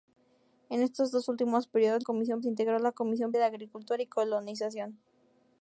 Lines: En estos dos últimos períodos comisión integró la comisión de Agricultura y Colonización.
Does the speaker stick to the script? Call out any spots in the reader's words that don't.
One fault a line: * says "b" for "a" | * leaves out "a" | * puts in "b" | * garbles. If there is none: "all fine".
all fine